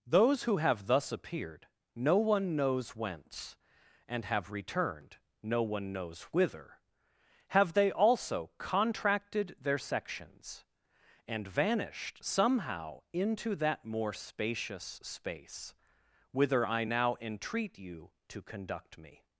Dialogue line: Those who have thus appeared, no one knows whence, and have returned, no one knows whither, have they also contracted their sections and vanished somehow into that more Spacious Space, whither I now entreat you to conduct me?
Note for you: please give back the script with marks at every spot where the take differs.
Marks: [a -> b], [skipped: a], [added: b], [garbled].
Those who have thus appeared, no one knows whence, and have returned, no one knows whither, have they also contracted their sections and vanished somehow into that more Spacious Space, whither I now entreat you to conduct me?